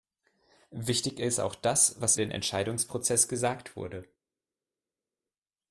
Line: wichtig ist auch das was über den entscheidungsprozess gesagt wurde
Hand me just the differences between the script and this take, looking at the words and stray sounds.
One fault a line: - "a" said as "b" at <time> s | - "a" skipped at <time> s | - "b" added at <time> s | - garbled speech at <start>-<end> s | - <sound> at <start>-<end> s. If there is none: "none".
- "über" skipped at 2.2 s